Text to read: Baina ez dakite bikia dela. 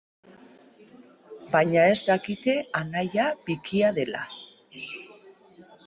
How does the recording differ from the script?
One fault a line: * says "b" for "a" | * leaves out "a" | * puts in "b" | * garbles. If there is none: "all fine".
* puts in "anaia"